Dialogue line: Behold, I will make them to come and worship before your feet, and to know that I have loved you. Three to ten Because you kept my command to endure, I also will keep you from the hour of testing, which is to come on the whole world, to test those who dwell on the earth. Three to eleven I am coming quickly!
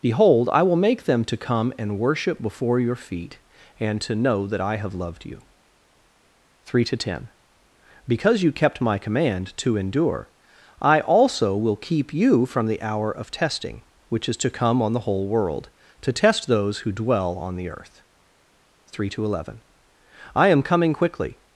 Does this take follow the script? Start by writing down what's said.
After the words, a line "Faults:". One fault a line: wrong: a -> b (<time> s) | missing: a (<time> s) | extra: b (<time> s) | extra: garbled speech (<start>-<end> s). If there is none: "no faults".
Behold, I will make them to come and worship before your feet, and to know that I have loved you. Three to ten Because you kept my command to endure, I also will keep you from the hour of testing, which is to come on the whole world, to test those who dwell on the earth. Three to eleven I am coming quickly!
Faults:
no faults